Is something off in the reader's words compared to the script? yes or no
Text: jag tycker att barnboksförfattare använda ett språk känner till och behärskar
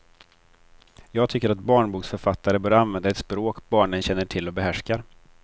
yes